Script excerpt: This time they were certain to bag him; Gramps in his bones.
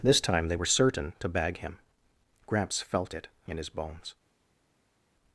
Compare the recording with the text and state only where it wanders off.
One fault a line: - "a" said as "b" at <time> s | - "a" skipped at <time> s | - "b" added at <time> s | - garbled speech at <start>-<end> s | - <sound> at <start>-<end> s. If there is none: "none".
- "felt it" added at 2.8 s